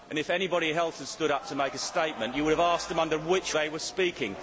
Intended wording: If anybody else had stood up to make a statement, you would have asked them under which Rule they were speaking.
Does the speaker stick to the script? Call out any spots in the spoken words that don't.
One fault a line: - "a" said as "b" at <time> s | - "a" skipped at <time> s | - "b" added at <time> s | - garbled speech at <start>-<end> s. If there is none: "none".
- "Rule" skipped at 3.5 s